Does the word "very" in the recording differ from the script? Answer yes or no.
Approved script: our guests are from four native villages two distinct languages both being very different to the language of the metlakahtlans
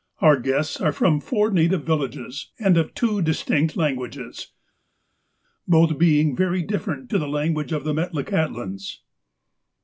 no